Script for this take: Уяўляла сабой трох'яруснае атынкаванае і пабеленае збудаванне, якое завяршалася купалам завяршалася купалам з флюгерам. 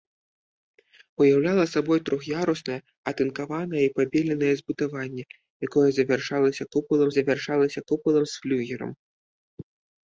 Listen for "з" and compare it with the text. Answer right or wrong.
right